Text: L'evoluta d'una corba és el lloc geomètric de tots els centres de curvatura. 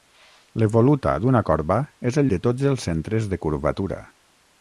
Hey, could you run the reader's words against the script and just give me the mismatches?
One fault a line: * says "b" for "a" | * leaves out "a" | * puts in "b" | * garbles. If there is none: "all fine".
* leaves out "lloc geomètric"